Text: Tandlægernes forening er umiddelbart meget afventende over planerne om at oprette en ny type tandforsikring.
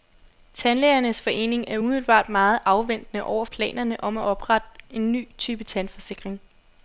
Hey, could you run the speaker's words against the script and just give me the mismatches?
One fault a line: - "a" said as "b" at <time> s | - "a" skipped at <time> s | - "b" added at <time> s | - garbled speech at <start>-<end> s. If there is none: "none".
none